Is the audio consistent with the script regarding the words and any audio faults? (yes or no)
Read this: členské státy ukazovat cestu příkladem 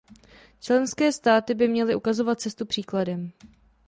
no